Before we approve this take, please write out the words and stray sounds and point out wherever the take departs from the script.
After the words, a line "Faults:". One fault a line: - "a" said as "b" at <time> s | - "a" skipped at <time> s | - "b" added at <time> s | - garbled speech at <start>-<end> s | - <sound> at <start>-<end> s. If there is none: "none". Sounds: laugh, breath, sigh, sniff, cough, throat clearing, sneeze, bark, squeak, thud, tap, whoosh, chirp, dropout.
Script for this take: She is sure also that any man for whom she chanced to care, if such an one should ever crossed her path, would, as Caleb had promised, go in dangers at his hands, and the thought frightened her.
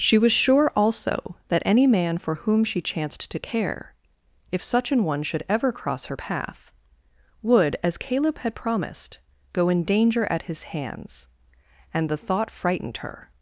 She was sure also that any man for whom she chanced to care, if such an one should ever cross her path, would, as Caleb had promised, go in danger at his hands, and the thought frightened her.
Faults:
- "is" said as "was" at 0.2 s
- "crossed" said as "cross" at 5.7 s
- "dangers" said as "danger" at 9.8 s